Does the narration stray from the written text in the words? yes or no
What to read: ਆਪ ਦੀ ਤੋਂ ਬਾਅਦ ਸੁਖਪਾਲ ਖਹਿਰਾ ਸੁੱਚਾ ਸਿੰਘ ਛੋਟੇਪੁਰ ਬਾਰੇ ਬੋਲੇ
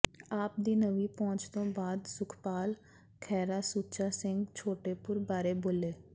yes